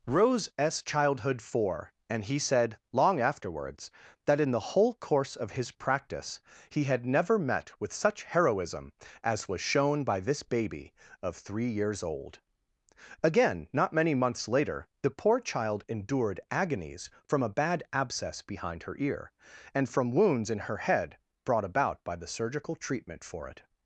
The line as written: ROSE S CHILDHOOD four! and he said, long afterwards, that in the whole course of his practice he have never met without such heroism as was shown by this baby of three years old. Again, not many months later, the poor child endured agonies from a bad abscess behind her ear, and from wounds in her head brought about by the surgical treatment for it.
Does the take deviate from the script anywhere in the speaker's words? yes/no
yes